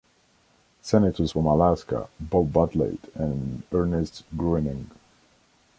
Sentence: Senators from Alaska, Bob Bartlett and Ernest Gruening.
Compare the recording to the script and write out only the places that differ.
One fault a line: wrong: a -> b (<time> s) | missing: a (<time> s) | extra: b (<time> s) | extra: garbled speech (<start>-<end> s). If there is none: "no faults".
no faults